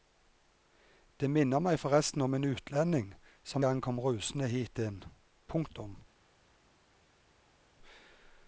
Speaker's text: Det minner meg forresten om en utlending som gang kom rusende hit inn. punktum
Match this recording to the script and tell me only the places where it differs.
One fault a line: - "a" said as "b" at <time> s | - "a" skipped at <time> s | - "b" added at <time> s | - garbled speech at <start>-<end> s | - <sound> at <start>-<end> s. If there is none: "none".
none